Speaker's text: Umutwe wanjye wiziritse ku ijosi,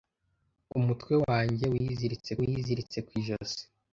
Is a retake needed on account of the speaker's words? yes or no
yes